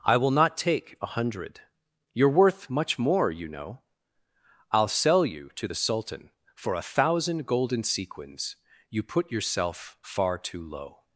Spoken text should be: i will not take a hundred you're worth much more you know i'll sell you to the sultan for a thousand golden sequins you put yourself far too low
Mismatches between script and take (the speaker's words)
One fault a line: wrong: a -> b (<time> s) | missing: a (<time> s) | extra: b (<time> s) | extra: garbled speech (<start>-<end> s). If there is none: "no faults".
no faults